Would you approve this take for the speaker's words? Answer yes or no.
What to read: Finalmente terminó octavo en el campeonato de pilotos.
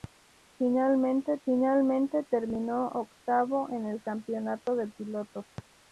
no